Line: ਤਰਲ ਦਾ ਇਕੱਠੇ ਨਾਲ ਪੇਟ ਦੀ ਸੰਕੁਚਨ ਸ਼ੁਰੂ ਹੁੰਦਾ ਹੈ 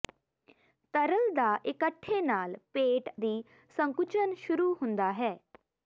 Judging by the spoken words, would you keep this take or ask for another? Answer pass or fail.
pass